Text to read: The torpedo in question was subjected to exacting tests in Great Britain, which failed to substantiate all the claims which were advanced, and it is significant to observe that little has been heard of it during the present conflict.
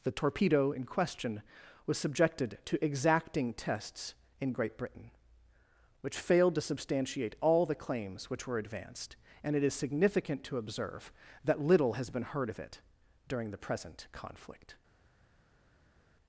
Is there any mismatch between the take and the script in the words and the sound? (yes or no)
no